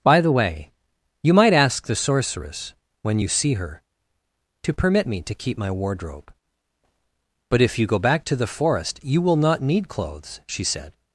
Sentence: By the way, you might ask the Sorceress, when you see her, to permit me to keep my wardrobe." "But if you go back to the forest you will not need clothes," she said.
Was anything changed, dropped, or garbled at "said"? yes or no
no